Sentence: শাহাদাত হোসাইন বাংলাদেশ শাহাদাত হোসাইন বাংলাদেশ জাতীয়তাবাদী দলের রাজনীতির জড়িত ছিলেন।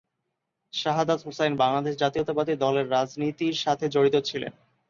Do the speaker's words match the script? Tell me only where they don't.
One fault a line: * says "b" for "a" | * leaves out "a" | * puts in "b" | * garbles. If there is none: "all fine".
* leaves out "শাহাদাত হোসাইন বাংলাদেশ"
* puts in "সাথে"